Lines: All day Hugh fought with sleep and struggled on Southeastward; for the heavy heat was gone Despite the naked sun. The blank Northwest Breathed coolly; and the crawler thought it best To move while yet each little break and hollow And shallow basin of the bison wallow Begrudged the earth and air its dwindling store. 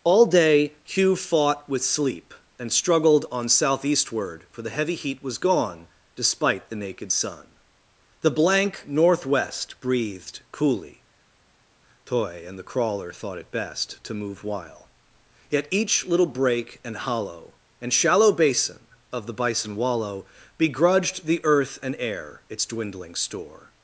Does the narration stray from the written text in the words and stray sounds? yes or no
yes